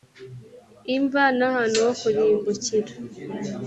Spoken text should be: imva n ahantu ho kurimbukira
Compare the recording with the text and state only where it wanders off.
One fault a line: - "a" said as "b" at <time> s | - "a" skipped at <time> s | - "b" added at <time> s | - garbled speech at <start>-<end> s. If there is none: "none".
none